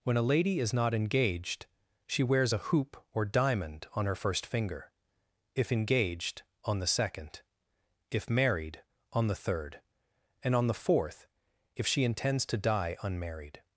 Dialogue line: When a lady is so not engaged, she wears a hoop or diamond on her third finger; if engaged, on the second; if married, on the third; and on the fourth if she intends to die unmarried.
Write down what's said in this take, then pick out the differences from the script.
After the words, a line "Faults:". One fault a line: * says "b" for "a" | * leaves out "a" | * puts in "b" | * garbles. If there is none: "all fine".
When a lady is not engaged, she wears a hoop or diamond on her first finger; if engaged, on the second; if married, on the third; and on the fourth if she intends to die unmarried.
Faults:
* leaves out "so"
* says "first" for "third"